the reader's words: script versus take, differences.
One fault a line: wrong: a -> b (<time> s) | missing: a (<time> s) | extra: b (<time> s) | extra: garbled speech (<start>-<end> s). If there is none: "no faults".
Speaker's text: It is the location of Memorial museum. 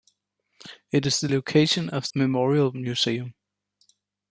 no faults